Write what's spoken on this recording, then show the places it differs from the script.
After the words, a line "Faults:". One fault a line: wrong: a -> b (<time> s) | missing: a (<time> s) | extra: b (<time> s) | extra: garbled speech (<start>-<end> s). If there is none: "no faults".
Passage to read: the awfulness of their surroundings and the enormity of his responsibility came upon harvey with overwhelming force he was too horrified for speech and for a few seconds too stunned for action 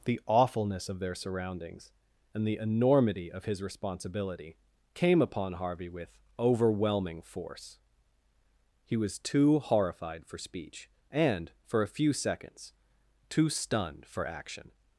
the awfulness of their surroundings and the enormity of his responsibility came upon harvey with overwhelming force he was too horrified for speech and for a few seconds too stunned for action
Faults:
no faults